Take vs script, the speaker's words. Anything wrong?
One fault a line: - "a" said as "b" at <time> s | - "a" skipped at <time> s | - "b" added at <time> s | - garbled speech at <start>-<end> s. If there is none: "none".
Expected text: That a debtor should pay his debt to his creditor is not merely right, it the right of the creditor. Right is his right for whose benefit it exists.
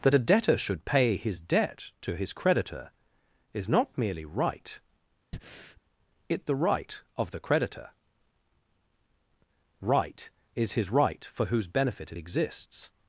none